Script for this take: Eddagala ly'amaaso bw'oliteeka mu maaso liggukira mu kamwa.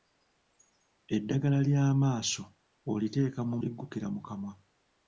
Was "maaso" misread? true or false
true